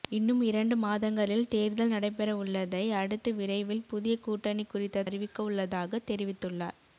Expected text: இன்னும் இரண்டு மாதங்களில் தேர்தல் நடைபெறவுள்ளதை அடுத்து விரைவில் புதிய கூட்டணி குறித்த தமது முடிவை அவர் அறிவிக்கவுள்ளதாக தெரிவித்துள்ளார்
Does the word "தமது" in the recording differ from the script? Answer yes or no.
yes